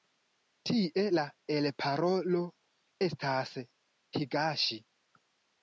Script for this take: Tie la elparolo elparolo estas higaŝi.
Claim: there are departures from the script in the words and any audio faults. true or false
true